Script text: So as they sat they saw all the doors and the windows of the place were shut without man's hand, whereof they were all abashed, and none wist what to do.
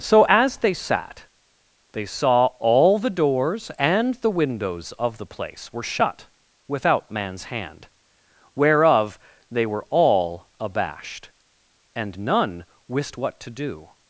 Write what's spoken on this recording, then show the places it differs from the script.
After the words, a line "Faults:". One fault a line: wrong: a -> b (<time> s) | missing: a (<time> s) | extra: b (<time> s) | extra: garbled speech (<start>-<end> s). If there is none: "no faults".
So as they sat they saw all the doors and the windows of the place were shut without man's hand, whereof they were all abashed, and none wist what to do.
Faults:
no faults